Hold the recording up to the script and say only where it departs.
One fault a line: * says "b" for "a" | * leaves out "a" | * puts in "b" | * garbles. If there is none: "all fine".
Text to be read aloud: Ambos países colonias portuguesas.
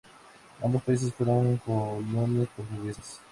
* puts in "fueron"